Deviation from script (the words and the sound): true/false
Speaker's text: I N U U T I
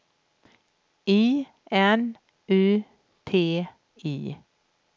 true